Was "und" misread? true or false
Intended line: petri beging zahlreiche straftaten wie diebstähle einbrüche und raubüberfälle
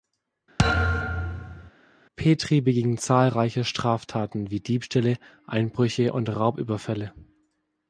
false